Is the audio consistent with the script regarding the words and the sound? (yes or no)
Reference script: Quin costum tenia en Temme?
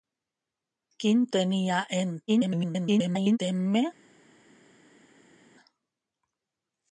no